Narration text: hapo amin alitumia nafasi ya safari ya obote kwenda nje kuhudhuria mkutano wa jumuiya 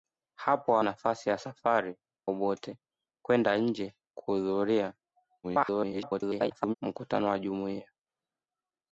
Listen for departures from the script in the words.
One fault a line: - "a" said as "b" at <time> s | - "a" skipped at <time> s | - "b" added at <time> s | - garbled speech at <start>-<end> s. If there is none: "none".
- "amin alitumia" skipped at 0.8 s
- "ya" skipped at 2.0 s
- garbled speech at 5.4-6.7 s